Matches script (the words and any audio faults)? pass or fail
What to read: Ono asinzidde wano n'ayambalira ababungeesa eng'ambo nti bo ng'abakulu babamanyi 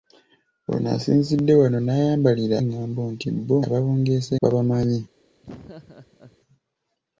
fail